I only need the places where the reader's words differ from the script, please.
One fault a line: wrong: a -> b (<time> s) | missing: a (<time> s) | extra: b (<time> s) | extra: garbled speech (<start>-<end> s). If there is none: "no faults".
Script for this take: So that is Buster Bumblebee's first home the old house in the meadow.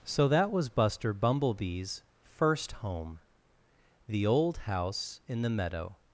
wrong: is -> was (0.5 s)